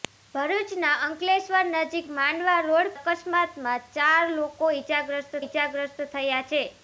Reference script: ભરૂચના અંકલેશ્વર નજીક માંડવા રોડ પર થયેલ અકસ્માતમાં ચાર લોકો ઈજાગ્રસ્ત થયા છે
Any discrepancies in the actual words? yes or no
yes